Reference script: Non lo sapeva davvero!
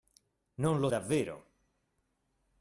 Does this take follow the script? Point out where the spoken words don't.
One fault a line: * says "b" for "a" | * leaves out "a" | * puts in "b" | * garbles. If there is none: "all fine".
* leaves out "sapeva"